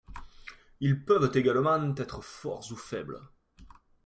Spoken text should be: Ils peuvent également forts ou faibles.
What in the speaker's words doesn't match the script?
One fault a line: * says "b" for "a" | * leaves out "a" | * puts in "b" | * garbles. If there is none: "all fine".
* puts in "être"